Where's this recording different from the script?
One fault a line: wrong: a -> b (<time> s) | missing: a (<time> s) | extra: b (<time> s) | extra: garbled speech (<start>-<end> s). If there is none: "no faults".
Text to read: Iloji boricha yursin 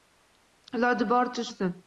no faults